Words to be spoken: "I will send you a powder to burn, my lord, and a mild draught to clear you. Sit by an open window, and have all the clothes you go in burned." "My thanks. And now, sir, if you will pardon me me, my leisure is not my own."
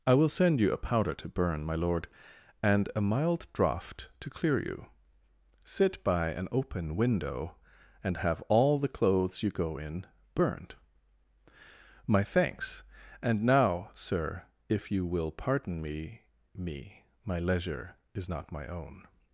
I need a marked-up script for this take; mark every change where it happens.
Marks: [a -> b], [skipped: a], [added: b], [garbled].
"I will send you a powder to burn, my lord, and a mild draught to clear you. Sit by an open window, and have all the clothes you go in burned." "My thanks. And now, sir, if you will pardon me me, my leisure is not my own."